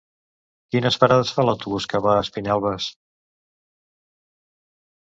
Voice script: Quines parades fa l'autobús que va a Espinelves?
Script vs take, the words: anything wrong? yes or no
no